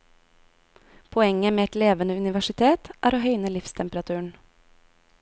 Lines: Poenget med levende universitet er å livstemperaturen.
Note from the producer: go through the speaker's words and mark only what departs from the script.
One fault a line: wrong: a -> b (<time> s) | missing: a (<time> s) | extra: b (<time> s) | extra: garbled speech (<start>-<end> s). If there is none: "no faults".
extra: et (1.6 s)
extra: høyne (3.2 s)